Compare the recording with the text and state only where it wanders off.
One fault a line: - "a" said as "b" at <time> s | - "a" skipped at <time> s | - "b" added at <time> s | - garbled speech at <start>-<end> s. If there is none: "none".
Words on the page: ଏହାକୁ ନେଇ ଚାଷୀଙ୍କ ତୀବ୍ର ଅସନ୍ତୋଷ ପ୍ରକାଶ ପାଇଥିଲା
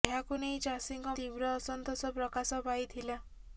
none